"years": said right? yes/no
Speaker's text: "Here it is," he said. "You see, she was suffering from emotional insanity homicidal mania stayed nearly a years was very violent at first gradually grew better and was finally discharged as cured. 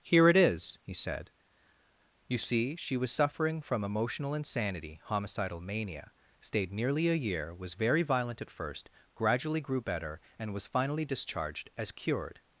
no